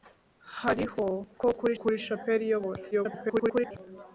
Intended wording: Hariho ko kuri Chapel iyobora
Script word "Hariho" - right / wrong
right